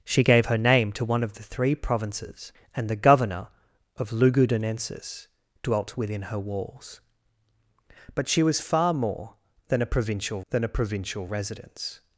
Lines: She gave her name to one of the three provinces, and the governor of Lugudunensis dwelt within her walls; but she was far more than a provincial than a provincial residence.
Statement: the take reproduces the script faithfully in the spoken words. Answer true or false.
true